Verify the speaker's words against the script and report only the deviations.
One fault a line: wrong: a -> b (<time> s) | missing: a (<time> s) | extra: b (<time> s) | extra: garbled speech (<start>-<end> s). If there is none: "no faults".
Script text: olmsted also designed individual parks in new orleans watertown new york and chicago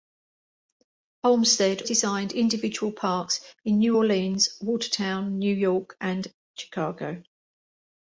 missing: also (1.8 s)